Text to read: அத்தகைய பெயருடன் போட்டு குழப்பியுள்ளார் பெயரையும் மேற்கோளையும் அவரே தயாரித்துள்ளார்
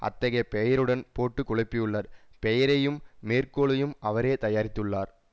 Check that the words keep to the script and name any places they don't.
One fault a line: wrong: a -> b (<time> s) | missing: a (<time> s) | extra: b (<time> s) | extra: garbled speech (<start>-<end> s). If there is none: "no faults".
no faults